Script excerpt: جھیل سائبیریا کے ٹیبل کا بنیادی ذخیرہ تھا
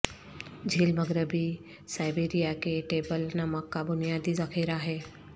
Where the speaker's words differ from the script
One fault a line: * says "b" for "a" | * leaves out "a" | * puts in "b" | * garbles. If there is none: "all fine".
* puts in "مغربی"
* puts in "نمک"
* says "ہے" for "تھا"